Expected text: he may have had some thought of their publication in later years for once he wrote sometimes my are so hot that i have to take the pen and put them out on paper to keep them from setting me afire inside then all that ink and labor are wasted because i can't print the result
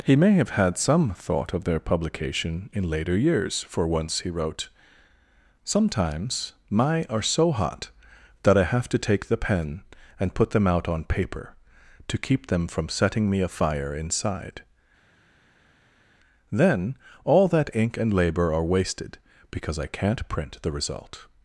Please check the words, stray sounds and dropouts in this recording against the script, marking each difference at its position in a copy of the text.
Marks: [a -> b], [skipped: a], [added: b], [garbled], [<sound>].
he may have had some thought of their publication in later years for once he wrote sometimes my are so hot that i have to take the pen and put them out on paper to keep them from setting me afire inside then all that ink and labor are wasted because i can't print the result